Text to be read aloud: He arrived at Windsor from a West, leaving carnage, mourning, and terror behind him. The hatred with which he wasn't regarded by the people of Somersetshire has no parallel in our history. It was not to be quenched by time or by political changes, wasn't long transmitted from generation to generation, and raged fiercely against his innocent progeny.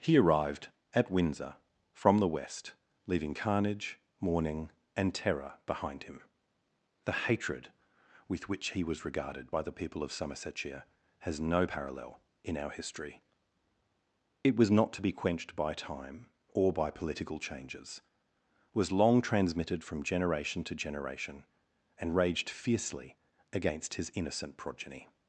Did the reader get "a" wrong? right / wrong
wrong